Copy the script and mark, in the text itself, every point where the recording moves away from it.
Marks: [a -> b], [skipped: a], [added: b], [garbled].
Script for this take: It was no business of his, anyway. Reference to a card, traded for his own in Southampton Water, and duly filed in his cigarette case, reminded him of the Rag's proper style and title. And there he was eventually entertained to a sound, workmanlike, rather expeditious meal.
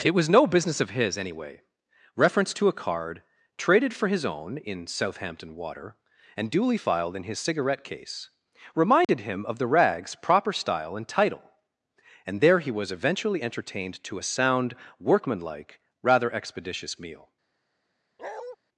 It was no business of his, anyway. Reference to a card, traded for his own in Southampton Water, and duly filed in his cigarette case, reminded him of the Rag's proper style and title. And there he was eventually entertained to a sound, workmanlike, rather expeditious meal.